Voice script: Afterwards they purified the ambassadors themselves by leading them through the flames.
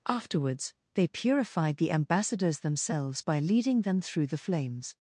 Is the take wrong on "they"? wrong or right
right